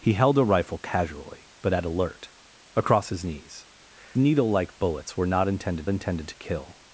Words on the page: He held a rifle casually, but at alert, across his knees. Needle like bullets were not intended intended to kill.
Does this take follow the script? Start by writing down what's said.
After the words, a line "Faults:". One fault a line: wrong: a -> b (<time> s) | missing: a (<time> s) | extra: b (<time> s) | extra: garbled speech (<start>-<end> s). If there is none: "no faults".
He held a rifle casually, but at alert, across his knees. Needle like bullets were not intended intended to kill.
Faults:
no faults